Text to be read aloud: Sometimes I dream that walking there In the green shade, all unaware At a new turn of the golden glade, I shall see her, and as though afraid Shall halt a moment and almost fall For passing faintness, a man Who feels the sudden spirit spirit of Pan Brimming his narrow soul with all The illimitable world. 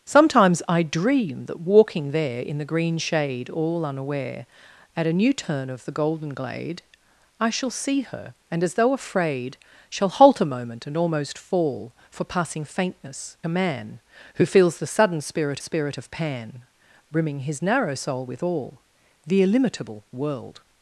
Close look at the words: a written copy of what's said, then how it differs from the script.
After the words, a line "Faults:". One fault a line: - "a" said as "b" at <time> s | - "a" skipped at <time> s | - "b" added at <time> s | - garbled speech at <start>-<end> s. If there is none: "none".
Sometimes I dream that walking there In the green shade, all unaware At a new turn of the golden glade, I shall see her, and as though afraid Shall halt a moment and almost fall For passing faintness, a man Who feels the sudden spirit spirit of Pan Brimming his narrow soul with all The illimitable world.
Faults:
none